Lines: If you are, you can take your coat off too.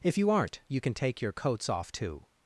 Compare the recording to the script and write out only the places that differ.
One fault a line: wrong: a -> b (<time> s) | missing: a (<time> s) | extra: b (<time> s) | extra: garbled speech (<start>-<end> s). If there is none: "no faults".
wrong: are -> aren't (0.3 s)
wrong: coat -> coats (1.3 s)